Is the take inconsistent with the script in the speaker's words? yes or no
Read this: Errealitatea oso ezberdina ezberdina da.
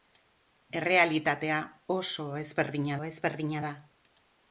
no